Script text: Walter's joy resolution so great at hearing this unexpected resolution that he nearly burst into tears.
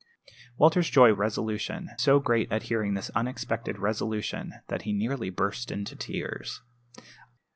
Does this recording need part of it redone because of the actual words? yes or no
no